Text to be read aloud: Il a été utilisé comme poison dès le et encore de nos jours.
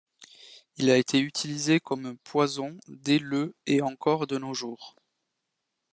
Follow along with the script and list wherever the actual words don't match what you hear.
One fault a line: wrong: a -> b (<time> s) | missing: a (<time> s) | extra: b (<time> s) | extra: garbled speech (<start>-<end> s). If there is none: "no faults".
no faults